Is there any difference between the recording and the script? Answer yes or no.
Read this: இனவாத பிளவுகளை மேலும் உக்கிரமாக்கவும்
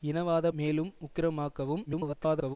yes